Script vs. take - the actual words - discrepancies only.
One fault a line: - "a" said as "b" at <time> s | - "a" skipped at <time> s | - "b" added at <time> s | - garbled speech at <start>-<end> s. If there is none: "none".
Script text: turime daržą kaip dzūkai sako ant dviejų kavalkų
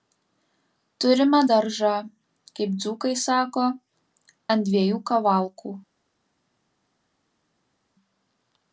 none